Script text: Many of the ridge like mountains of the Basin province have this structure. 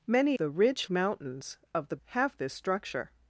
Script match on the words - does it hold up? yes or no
no